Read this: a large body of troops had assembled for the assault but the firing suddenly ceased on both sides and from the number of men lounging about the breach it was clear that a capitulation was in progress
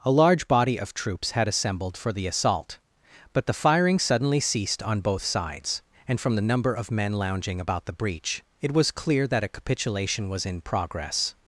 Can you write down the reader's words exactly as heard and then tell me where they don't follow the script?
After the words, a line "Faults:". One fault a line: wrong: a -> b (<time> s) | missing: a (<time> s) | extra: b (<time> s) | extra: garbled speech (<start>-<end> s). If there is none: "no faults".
a large body of troops had assembled for the assault but the firing suddenly ceased on both sides and from the number of men lounging about the breach it was clear that a capitulation was in progress
Faults:
no faults